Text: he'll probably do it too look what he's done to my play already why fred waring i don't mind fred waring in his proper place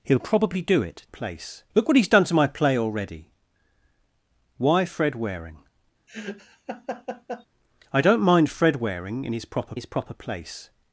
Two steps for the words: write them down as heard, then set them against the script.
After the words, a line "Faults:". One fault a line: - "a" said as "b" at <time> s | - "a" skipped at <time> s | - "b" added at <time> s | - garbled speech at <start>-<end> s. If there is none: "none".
he'll probably do it place look what he's done to my play already why fred waring i don't mind fred waring in his proper his proper place
Faults:
- "too" said as "place" at 1.0 s
- "his proper" added at 9.7 s